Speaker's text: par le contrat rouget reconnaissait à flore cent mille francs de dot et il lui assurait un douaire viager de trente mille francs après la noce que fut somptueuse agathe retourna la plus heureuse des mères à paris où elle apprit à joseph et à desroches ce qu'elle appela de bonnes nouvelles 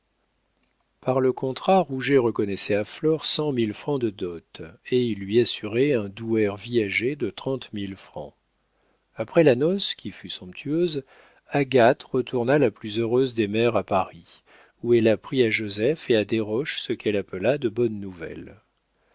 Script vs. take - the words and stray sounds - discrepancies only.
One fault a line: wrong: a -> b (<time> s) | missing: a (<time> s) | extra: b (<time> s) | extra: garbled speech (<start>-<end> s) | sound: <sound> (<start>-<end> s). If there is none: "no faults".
wrong: que -> qui (9.9 s)